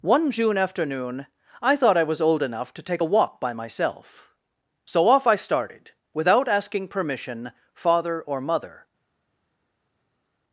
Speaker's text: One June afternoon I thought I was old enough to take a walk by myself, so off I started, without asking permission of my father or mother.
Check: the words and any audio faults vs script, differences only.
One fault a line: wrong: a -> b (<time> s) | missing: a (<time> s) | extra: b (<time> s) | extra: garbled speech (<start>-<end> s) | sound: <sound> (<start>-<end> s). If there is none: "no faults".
missing: of my (7.5 s)